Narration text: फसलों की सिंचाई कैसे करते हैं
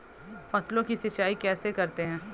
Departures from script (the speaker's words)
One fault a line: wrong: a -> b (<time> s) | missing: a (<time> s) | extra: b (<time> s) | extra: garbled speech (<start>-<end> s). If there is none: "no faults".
no faults